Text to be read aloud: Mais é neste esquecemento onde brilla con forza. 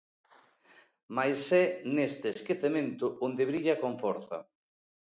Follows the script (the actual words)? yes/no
yes